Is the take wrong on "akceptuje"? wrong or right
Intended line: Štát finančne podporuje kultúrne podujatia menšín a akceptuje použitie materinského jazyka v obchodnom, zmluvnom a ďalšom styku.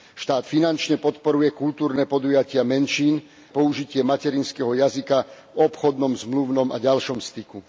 wrong